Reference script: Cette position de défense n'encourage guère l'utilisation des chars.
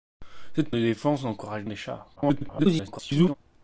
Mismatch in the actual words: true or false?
true